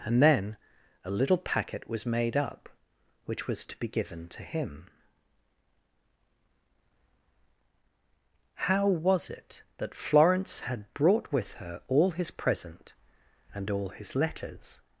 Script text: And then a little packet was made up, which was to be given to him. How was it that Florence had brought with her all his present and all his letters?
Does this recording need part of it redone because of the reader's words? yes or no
no